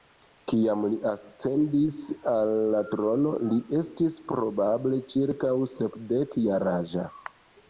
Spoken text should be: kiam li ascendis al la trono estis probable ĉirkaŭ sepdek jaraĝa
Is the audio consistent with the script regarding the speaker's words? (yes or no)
no